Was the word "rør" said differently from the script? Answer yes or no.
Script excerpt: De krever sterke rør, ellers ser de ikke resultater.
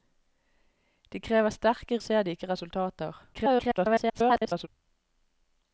yes